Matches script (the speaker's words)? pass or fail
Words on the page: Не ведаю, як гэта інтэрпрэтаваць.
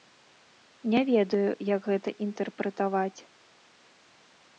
pass